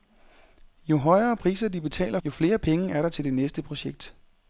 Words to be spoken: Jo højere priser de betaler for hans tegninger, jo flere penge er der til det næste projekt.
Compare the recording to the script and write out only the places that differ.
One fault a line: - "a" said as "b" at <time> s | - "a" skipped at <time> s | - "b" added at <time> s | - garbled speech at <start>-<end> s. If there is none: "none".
- "for hans tegninger" skipped at 2.2 s